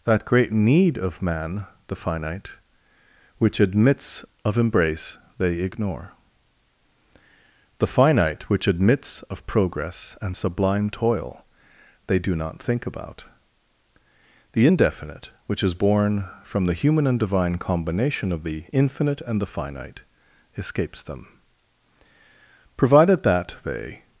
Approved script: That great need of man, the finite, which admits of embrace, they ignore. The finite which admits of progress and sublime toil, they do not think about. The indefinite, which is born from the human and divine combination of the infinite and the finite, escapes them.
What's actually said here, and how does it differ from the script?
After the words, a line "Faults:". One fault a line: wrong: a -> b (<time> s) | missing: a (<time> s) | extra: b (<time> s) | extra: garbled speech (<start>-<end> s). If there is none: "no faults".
That great need of man, the finite, which admits of embrace, they ignore. The finite which admits of progress and sublime toil, they do not think about. The indefinite, which is born from the human and divine combination of the infinite and the finite, escapes them. Provided that they
Faults:
extra: Provided that they (22.8 s)